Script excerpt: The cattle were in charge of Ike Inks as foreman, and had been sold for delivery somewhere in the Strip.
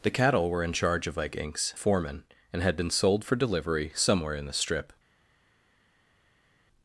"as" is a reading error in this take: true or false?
true